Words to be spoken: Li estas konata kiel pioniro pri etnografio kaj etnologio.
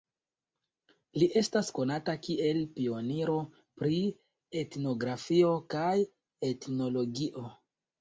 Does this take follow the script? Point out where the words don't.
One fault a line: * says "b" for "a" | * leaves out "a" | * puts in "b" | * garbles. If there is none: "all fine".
all fine